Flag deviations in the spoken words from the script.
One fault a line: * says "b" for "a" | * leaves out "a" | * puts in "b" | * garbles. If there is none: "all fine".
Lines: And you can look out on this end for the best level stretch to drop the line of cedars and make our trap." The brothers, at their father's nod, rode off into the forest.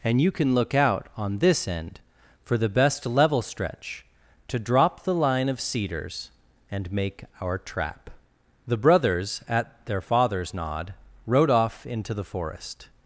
all fine